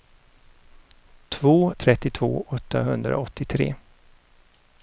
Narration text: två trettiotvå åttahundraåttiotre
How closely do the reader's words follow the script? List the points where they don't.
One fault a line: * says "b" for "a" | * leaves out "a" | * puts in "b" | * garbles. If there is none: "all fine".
all fine